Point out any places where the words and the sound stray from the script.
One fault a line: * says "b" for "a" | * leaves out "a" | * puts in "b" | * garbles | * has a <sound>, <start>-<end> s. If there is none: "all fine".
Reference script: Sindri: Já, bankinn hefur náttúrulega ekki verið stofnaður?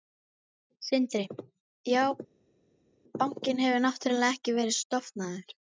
all fine